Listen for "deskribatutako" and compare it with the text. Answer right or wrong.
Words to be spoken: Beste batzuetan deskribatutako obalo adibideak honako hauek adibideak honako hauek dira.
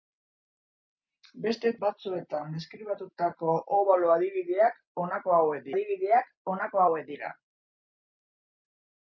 right